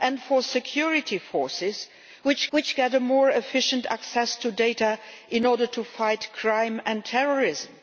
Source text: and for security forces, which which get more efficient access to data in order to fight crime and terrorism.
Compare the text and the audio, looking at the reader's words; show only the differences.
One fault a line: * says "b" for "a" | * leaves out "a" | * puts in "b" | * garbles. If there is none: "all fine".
all fine